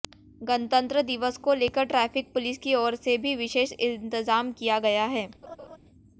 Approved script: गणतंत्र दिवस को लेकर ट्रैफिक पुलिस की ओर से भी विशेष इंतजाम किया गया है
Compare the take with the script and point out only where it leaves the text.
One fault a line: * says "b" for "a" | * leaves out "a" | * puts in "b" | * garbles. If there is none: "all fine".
all fine